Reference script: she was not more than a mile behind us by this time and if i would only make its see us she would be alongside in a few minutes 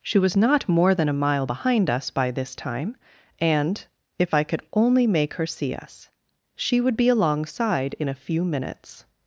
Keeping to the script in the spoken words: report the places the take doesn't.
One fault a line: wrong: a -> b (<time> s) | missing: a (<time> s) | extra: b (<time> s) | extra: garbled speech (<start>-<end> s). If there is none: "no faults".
wrong: would -> could (4.4 s)
wrong: its -> her (5.3 s)